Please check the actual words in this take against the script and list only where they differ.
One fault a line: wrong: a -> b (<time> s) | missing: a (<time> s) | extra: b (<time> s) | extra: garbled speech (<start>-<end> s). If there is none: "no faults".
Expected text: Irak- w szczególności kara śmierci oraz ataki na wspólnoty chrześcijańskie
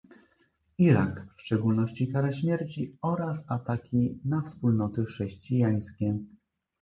no faults